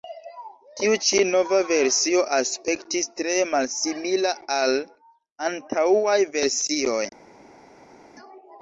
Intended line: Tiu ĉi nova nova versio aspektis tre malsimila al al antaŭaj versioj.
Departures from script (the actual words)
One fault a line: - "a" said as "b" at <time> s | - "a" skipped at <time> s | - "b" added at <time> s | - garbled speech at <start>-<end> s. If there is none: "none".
- "nova" skipped at 1.6 s
- "al" skipped at 4.7 s